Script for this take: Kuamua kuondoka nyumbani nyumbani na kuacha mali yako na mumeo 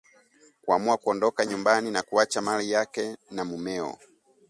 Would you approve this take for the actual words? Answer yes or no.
no